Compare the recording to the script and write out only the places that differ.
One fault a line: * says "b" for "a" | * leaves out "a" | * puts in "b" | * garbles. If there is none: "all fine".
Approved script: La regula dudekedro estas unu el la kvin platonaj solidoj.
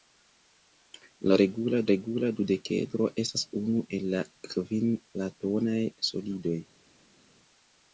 * puts in "regula"